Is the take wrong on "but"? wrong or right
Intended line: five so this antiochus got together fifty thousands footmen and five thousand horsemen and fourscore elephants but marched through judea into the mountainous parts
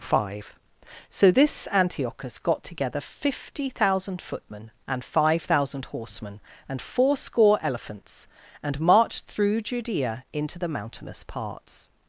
wrong